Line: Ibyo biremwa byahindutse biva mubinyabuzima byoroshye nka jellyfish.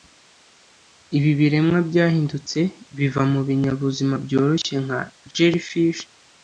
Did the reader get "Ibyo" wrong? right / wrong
wrong